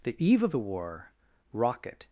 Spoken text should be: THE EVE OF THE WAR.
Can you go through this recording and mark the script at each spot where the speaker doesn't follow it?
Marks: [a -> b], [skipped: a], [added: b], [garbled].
THE EVE OF THE WAR. [added: rocket]